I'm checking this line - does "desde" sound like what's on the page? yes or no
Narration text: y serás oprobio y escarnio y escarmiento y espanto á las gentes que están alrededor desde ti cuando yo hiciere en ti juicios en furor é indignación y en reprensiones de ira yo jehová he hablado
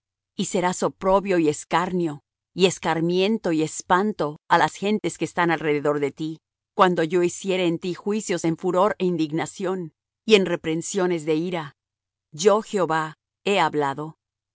no